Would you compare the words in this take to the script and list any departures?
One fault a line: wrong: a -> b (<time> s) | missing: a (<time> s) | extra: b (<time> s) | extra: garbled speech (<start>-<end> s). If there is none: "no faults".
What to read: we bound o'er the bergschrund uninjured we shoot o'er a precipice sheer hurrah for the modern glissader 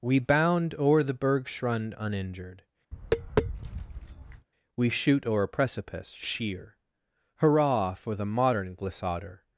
no faults